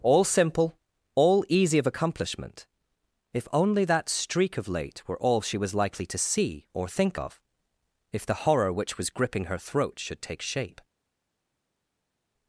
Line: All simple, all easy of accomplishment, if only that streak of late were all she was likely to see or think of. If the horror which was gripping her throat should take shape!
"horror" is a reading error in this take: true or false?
false